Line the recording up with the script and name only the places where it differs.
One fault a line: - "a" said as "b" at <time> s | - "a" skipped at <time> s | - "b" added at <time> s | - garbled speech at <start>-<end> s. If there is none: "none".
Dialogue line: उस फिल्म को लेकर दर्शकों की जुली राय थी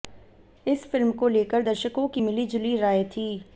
- "उस" said as "इस" at 0.7 s
- "मिली" added at 2.2 s